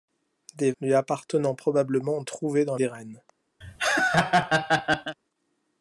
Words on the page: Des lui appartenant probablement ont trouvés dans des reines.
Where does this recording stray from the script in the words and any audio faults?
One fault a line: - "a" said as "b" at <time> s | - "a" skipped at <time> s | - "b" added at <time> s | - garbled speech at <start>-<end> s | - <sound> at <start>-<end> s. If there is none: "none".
- laugh at 3.6-5.2 s